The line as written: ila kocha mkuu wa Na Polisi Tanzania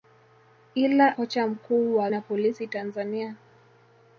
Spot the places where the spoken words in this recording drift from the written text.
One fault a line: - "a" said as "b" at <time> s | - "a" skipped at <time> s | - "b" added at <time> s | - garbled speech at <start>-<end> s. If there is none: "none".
none